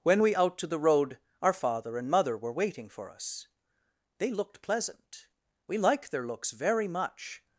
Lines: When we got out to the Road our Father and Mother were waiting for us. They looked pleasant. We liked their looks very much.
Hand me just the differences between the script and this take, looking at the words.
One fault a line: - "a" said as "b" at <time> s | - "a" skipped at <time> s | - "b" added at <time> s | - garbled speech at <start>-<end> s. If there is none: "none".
- "got" skipped at 0.3 s